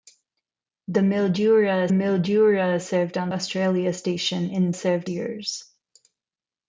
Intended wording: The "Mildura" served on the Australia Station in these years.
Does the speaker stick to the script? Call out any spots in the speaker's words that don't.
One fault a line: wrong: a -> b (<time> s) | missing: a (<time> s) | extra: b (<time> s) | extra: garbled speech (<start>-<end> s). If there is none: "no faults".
extra: mildura (1.9 s)
missing: the (3.3 s)
wrong: these -> served (4.7 s)